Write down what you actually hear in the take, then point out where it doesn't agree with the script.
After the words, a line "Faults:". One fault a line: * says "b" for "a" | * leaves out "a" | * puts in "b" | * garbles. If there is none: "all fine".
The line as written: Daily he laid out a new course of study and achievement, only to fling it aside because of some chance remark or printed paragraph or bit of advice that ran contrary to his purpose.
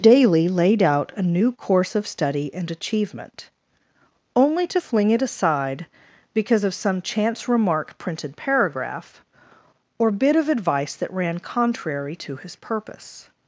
Daily laid out a new course of study and achievement, only to fling it aside because of some chance remark printed paragraph or bit of advice that ran contrary to his purpose.
Faults:
* leaves out "he"
* leaves out "or"